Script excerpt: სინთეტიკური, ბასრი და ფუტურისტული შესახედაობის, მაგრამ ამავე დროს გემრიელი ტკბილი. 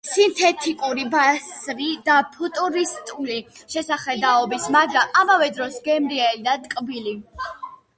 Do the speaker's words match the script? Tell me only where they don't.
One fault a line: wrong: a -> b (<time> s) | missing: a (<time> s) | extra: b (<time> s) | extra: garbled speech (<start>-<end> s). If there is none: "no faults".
extra: და (6.5 s)